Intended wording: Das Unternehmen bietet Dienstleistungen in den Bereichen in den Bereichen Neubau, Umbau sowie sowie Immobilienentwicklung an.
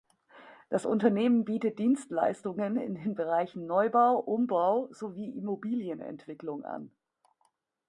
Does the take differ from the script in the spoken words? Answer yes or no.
yes